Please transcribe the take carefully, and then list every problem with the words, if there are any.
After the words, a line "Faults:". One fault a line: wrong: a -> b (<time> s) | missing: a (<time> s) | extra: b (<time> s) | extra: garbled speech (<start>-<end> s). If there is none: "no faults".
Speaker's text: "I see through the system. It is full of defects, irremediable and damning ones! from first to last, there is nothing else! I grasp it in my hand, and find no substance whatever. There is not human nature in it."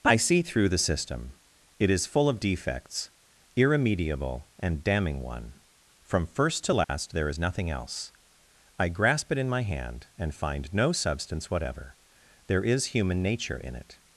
"I see through the system. It is full of defects, irremediable and damning one! from first to last, there is nothing else! I grasp it in my hand, and find no substance whatever. There is human nature in it."
Faults:
wrong: ones -> one (5.2 s)
missing: not (12.9 s)